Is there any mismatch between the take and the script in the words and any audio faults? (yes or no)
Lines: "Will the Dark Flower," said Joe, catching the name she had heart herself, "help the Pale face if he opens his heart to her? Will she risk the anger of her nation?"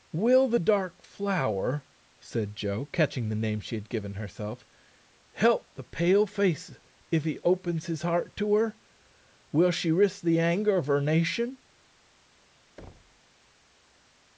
yes